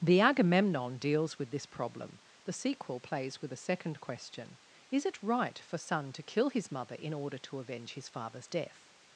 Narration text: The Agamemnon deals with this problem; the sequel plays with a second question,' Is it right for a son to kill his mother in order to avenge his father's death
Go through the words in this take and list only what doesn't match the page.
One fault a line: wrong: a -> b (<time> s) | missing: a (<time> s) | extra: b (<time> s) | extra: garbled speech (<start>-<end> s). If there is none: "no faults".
missing: a (5.8 s)